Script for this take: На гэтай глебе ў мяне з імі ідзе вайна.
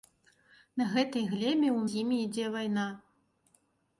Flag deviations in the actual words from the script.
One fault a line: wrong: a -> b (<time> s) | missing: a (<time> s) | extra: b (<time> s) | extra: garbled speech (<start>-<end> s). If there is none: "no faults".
missing: мяне (1.8 s)